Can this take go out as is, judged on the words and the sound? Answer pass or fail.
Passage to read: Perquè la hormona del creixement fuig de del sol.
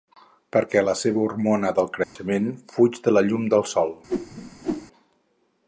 fail